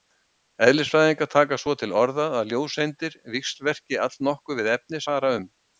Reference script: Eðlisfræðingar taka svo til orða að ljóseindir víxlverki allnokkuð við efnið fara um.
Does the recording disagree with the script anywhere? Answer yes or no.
no